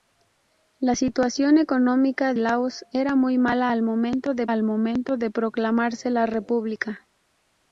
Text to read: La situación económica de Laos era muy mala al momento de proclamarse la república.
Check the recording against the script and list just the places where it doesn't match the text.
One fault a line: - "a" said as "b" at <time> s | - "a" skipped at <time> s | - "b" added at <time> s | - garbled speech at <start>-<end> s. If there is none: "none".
- "de" skipped at 2.3 s
- "al momento de" added at 4.5 s